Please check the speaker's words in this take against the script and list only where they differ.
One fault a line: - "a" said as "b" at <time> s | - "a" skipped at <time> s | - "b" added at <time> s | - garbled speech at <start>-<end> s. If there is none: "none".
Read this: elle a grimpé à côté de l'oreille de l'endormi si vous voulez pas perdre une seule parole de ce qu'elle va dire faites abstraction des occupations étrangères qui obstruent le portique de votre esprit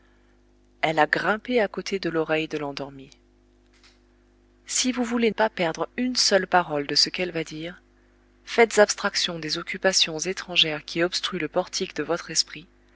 none